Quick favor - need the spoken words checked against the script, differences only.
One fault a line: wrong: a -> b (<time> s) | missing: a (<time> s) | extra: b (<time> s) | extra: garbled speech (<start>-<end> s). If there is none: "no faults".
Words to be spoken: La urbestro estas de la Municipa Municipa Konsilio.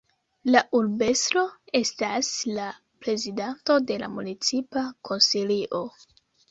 extra: la prezidanto (2.5 s)
missing: Municipa (4.9 s)